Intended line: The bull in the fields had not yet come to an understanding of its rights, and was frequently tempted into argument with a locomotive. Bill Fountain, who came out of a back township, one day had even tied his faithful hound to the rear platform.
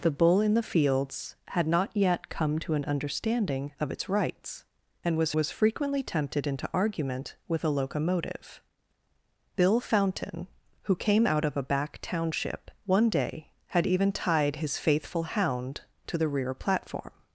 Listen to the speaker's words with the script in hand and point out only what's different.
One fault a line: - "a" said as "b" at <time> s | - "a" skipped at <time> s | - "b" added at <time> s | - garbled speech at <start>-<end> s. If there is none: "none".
- "was" added at 5.3 s